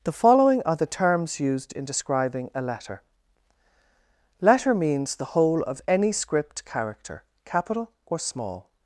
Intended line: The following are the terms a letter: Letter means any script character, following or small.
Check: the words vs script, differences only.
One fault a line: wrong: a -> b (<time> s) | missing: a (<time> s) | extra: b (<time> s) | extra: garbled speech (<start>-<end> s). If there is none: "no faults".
extra: used in describing (1.4 s)
extra: the whole of (5.2 s)
wrong: following -> capital (7.5 s)